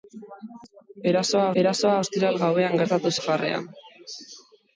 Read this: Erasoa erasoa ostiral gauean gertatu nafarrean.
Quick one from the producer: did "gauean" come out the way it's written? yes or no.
yes